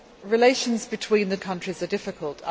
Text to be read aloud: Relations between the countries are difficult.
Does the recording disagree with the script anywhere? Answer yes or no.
no